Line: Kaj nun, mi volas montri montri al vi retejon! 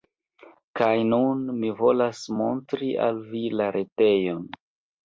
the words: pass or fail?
fail